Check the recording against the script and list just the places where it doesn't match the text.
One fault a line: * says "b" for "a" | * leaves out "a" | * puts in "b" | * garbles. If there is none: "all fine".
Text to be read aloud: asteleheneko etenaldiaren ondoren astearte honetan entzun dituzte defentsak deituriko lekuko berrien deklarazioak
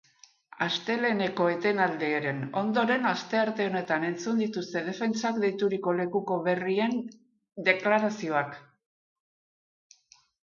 all fine